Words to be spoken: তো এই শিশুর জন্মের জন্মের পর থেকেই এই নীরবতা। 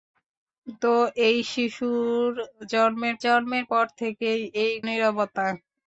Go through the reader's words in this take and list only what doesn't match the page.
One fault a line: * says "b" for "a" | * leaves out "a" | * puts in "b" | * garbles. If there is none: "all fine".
all fine